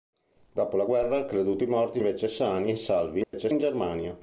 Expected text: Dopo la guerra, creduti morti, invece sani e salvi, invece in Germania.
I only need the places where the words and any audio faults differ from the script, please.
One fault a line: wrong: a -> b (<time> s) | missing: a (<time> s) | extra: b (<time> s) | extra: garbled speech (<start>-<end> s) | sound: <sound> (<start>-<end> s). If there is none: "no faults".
sound: dropout (3.2-3.3 s)